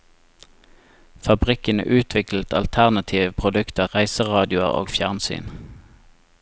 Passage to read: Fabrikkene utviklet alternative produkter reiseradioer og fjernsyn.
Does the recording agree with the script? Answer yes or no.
yes